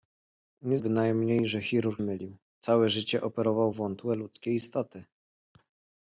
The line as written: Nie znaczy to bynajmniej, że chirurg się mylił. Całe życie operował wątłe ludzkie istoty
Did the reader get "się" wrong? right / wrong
wrong